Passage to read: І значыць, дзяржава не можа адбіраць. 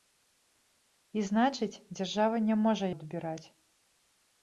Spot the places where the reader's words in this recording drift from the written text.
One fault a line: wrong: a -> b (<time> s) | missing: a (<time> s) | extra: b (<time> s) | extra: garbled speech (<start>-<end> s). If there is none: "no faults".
no faults